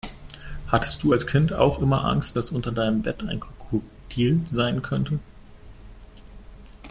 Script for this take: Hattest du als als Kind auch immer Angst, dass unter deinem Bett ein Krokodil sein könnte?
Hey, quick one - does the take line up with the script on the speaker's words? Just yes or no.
no